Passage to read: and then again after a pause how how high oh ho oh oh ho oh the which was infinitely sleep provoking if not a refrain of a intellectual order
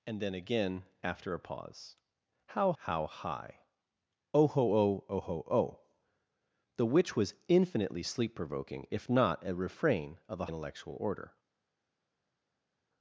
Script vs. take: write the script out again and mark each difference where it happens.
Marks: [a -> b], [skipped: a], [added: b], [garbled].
and then again after a pause how how high oh ho oh oh ho oh the which was infinitely sleep provoking if not a refrain of a intellectual order